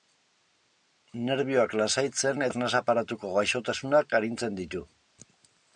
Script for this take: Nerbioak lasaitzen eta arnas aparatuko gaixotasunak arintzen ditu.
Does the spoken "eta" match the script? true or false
false